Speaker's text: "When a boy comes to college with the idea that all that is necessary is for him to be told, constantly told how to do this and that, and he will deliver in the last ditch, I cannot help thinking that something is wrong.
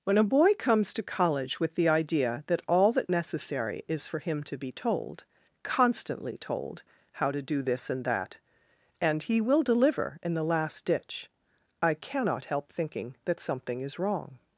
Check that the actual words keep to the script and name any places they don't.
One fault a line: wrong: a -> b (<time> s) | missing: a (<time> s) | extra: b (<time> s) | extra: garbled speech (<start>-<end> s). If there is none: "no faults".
missing: is (3.1 s)